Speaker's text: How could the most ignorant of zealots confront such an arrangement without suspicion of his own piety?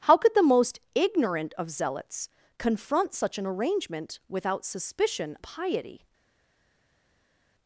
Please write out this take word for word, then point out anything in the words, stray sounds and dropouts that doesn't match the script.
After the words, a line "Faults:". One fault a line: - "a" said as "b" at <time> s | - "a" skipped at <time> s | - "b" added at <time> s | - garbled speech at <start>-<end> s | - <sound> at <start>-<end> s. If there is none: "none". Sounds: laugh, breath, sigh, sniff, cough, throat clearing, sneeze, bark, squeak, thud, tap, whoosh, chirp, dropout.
How could the most ignorant of zealots confront such an arrangement without suspicion piety?
Faults:
- "of his own" skipped at 5.4 s